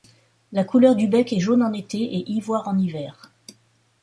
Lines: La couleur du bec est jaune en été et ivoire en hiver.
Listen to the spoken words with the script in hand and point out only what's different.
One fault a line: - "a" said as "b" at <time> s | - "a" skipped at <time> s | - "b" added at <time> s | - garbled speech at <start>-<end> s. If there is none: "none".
none